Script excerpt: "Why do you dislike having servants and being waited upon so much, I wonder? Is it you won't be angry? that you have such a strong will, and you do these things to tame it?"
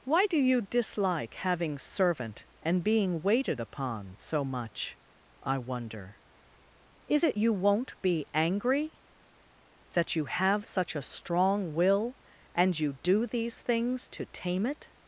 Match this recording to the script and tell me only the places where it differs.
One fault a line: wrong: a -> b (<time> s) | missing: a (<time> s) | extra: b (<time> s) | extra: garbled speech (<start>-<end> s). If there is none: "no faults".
wrong: servants -> servant (1.8 s)